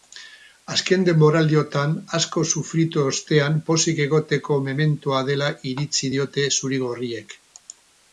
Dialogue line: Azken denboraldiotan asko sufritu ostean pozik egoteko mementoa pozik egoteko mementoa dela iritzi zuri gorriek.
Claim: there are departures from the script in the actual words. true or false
true